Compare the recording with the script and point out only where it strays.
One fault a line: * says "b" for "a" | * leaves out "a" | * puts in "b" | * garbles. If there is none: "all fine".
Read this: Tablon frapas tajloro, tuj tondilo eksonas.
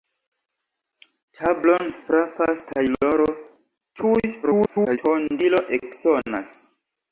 * garbles